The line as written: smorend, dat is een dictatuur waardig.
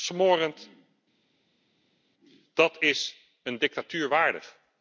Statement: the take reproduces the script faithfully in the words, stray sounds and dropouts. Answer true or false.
true